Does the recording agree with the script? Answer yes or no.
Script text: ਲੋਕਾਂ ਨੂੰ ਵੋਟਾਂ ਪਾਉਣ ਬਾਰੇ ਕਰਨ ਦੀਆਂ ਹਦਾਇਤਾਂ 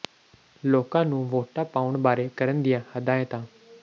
yes